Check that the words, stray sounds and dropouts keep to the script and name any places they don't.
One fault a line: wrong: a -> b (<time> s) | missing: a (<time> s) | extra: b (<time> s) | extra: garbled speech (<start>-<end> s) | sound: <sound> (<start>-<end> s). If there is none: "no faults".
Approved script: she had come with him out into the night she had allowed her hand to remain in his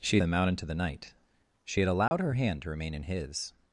missing: had come with (0.2 s)
sound: dropout (2.1-2.1 s)